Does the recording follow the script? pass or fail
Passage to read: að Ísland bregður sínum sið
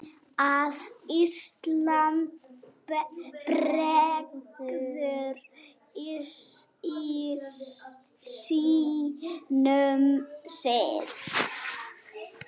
pass